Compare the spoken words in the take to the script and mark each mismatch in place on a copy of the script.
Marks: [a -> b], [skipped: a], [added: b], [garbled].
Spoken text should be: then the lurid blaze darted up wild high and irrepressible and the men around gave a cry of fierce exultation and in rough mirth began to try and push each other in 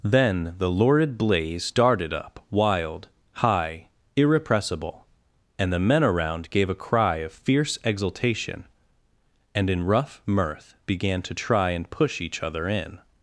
then the lurid blaze darted up wild high [skipped: and] irrepressible and the men around gave a cry of fierce exultation and in rough mirth began to try and push each other in